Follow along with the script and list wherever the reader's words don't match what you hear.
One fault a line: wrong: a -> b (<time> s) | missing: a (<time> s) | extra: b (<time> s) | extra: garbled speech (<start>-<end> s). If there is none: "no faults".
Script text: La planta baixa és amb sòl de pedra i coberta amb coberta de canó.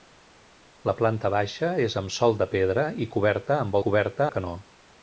no faults